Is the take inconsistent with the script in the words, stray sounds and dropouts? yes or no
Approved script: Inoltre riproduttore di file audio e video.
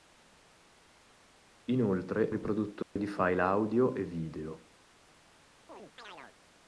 yes